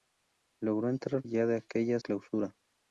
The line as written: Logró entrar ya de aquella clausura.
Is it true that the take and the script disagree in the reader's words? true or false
false